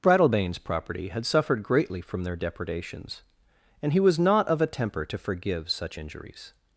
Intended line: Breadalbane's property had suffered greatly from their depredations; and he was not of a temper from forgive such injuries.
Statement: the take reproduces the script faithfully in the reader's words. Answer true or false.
false